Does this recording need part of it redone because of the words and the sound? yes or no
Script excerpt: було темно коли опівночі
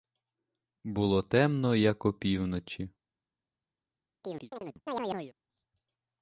yes